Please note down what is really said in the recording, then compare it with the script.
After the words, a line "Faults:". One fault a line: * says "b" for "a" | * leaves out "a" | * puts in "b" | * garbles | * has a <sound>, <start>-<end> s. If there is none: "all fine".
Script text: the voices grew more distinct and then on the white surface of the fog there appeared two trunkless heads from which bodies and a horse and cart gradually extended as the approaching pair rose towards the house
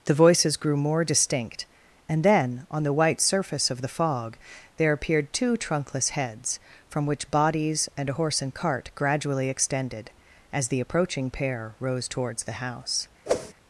the voices grew more distinct and then on the white surface of the fog there appeared two trunkless heads from which bodies and a horse and cart gradually extended as the approaching pair rose towards the house
Faults:
* has a whoosh, 13.3-13.5 s